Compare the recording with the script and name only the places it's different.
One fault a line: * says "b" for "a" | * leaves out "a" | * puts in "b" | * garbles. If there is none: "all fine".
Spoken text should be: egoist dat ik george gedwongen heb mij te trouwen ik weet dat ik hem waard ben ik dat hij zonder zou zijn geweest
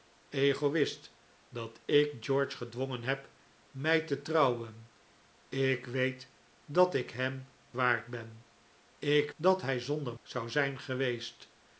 all fine